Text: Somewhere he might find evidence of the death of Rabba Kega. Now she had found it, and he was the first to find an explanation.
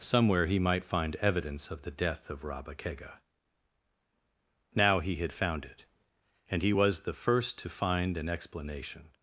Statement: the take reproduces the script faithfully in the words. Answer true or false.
false